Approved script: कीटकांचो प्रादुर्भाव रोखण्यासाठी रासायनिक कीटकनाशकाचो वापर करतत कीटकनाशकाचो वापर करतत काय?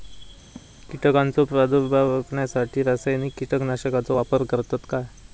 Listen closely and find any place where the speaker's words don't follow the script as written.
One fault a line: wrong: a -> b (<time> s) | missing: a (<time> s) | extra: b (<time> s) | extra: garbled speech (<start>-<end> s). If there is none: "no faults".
missing: कीटकनाशकाचो वापर करतत (4.9 s)